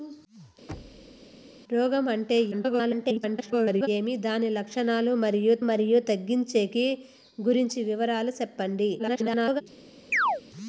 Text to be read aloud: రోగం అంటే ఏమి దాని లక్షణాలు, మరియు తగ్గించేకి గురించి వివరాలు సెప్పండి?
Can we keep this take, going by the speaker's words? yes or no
no